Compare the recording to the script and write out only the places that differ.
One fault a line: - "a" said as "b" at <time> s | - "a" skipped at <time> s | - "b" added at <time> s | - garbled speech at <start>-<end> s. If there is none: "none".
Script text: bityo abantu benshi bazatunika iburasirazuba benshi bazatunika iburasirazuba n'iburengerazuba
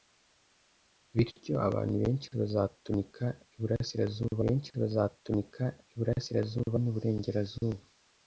none